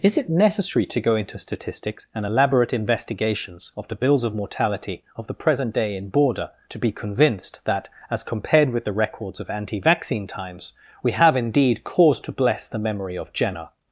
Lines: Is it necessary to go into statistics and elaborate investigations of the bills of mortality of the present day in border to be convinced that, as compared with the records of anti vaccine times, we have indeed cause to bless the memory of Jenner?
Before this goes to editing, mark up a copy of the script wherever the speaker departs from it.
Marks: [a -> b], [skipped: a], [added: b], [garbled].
Is it necessary to go into statistics and elaborate investigations of the bills of mortality of the present day in border to be convinced that, as compared with the records of anti vaccine times, we have indeed cause to bless the memory of Jenner?